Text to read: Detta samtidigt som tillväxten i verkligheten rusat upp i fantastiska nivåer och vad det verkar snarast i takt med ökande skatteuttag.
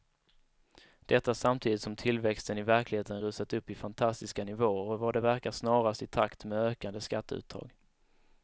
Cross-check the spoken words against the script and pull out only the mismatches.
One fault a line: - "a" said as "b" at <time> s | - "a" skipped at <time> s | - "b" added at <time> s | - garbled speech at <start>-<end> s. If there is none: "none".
none